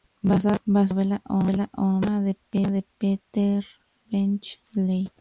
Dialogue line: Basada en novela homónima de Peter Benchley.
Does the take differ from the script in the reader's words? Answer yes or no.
yes